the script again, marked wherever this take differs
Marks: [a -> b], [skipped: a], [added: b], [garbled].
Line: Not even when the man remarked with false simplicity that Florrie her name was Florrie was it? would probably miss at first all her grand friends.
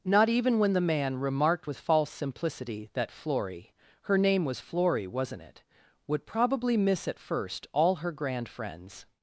Not even when the man remarked with false simplicity that Florrie her name was Florrie [was -> wasn't] it? would probably miss at first all her grand friends.